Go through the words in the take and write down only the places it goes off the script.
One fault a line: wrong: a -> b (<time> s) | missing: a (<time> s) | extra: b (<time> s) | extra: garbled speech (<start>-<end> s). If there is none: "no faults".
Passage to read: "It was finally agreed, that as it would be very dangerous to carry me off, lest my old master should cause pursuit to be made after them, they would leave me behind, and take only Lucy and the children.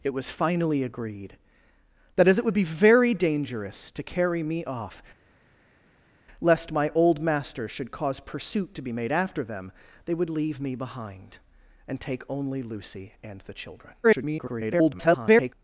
extra: garbled speech (14.0-15.5 s)